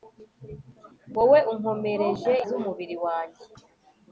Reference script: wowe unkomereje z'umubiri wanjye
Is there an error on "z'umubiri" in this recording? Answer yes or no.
no